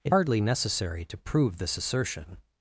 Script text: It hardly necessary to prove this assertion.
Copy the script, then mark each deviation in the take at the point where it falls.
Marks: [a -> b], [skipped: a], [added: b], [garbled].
It hardly necessary to prove this assertion.